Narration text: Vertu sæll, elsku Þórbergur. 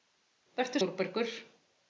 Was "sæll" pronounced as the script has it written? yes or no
no